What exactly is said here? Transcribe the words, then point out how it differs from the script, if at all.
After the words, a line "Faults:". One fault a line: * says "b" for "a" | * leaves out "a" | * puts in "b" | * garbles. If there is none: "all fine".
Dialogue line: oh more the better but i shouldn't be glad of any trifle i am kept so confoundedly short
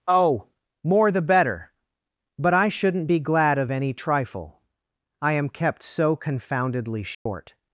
oh more the better but i shouldn't be glad of any trifle i am kept so confoundedly short
Faults:
all fine